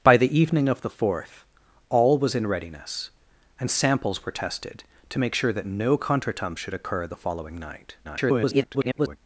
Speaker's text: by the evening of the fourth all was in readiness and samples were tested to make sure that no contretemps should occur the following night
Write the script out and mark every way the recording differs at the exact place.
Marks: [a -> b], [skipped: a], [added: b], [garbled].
by the evening of the fourth all was in readiness and samples were tested to make sure that no contretemps should occur the following night [garbled]